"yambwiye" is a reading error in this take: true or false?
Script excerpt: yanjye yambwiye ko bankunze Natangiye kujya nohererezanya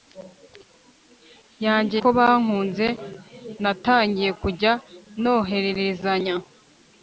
true